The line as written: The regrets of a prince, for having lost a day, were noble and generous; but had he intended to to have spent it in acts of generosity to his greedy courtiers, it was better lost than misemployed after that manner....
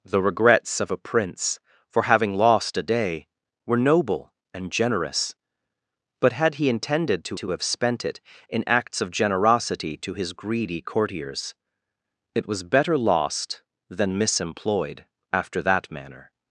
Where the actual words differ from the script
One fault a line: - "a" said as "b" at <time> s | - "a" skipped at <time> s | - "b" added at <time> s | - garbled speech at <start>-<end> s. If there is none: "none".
none